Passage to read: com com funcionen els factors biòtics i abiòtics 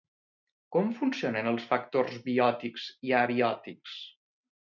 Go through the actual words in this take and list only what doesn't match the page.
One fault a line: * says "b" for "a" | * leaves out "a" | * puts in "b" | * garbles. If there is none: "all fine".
* leaves out "com"